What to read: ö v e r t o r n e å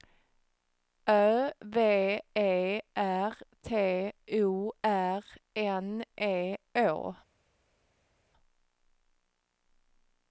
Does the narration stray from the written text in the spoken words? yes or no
no